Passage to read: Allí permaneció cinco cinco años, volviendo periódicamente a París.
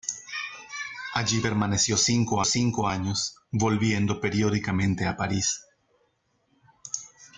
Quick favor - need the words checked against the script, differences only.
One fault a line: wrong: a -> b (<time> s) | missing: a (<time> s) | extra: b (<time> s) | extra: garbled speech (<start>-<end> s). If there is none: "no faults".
no faults